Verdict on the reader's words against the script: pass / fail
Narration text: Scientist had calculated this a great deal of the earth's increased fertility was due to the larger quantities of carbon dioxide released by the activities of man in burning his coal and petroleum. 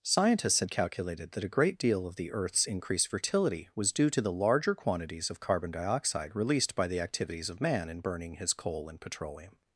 fail